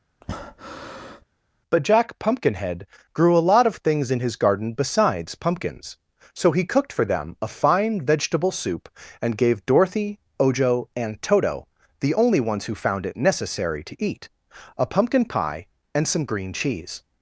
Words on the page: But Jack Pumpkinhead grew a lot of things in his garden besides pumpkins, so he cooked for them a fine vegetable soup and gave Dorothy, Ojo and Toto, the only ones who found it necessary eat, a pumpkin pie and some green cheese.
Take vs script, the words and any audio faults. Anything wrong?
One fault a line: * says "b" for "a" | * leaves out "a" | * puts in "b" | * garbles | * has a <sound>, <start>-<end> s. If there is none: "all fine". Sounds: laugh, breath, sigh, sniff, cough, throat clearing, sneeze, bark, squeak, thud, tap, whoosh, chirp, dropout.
* has a breath, 0.2-1.2 s
* puts in "to"